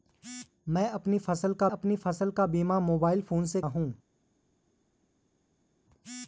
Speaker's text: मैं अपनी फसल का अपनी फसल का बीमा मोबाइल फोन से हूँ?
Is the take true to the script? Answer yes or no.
yes